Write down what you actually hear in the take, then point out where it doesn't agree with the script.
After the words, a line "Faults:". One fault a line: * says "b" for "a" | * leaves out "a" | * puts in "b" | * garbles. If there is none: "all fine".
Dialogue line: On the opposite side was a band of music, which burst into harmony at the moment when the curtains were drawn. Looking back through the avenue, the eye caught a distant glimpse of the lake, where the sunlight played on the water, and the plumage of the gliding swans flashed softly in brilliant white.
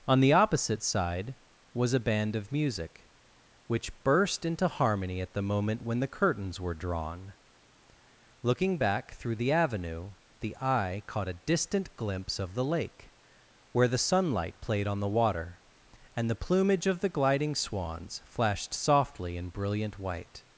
On the opposite side was a band of music, which burst into harmony at the moment when the curtains were drawn. Looking back through the avenue, the eye caught a distant glimpse of the lake, where the sunlight played on the water, and the plumage of the gliding swans flashed softly in brilliant white.
Faults:
all fine